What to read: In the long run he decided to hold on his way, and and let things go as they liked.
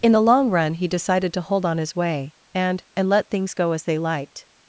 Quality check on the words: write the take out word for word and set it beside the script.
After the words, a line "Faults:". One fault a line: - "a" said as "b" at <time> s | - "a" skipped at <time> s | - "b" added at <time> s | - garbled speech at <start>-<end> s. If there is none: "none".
In the long run he decided to hold on his way, and and let things go as they liked.
Faults:
none